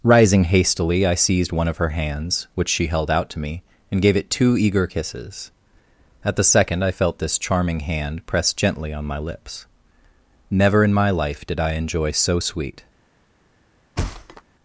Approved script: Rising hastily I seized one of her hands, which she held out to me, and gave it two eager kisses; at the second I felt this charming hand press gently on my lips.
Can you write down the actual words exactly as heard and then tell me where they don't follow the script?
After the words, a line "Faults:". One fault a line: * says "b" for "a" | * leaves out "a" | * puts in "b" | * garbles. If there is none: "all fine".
Rising hastily I seized one of her hands, which she held out to me, and gave it two eager kisses; at the second I felt this charming hand press gently on my lips. Never in my life did I enjoy so sweet
Faults:
* puts in "Never in my life did I enjoy so sweet"